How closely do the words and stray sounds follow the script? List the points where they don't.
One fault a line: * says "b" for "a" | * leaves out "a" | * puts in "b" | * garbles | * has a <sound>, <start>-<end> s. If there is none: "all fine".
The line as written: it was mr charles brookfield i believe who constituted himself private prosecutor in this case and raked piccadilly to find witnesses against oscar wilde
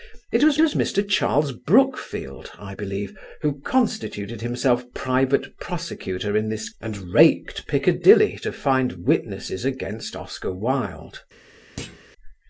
* puts in "was"
* leaves out "case"
* has a thud, 11.8-12.0 s